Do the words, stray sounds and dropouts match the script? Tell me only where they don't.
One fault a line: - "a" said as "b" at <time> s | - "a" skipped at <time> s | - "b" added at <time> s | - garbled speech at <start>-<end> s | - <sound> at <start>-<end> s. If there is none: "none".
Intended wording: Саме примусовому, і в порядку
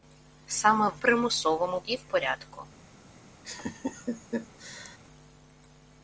- laugh at 3.4-5.0 s